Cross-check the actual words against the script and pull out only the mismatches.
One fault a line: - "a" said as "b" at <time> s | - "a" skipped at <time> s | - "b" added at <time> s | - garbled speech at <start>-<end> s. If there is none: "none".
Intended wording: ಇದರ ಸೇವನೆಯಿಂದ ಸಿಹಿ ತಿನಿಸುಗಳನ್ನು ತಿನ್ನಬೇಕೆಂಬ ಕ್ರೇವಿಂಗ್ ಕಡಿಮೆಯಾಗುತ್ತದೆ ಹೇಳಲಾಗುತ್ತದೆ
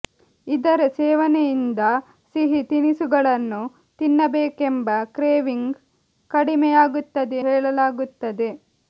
none